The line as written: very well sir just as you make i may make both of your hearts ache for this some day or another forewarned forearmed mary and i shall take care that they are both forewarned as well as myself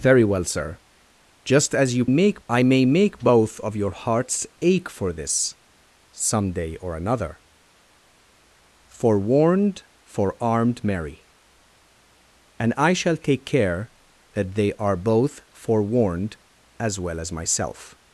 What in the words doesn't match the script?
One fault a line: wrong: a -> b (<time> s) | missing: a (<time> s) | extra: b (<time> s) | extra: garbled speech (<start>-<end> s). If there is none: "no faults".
no faults